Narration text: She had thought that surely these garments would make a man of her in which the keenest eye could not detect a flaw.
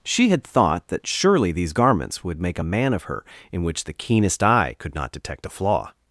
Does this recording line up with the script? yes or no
yes